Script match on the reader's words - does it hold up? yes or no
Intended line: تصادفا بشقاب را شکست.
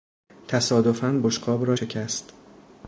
yes